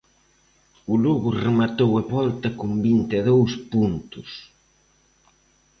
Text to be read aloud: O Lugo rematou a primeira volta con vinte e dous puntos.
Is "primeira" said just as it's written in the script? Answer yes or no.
no